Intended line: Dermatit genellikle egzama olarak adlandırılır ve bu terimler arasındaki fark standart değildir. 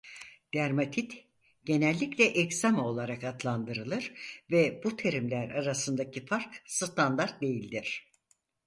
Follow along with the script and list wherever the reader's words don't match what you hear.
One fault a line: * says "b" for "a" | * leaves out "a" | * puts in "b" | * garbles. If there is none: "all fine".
all fine